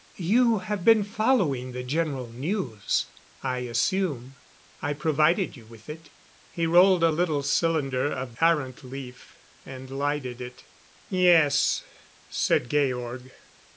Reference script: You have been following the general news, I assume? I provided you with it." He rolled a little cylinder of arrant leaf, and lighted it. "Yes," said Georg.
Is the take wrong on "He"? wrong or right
right